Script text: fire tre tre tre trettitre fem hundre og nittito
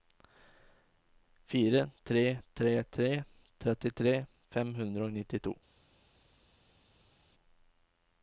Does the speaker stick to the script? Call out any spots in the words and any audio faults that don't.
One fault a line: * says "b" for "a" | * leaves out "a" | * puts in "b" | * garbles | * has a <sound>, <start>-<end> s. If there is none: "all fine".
all fine